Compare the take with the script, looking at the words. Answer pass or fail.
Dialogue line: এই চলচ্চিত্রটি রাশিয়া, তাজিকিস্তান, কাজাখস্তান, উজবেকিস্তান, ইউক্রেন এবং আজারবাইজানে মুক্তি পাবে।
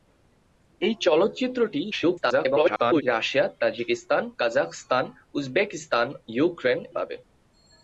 fail